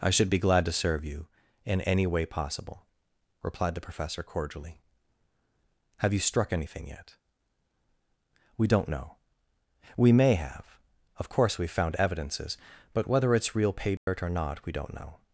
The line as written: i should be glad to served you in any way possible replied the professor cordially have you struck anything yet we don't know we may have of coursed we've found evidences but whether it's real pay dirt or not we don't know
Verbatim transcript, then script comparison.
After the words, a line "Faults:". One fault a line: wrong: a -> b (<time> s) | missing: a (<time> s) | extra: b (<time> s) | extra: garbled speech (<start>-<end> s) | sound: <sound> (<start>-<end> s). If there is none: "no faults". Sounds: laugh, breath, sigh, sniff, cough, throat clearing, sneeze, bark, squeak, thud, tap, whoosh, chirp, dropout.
i should be glad to serve you in any way possible replied the professor cordially have you struck anything yet we don't know we may have of course we've found evidences but whether it's real pay dirt or not we don't know
Faults:
wrong: served -> serve (0.7 s)
wrong: coursed -> course (11.3 s)
sound: dropout (14.0-14.1 s)